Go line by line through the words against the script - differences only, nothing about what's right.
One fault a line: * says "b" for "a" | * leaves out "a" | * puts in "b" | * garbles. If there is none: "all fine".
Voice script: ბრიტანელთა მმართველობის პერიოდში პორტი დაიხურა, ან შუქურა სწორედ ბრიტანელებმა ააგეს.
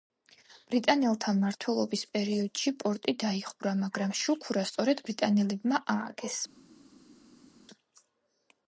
* says "მაგრამ" for "ან"